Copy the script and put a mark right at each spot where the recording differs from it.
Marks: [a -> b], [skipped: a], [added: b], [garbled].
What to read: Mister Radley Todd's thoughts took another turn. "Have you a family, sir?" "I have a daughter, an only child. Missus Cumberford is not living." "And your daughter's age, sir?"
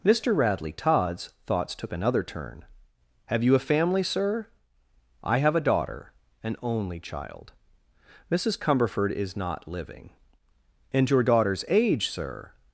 Mister Radley Todd's thoughts took another turn. "Have you a family, sir?" "I have a daughter, an only child. Missus Cumberford is not living." "And your daughter's age, sir?"